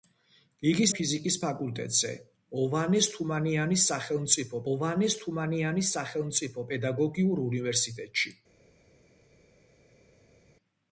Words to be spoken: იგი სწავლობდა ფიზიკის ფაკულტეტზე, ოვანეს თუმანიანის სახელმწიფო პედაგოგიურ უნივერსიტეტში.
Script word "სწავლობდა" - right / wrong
wrong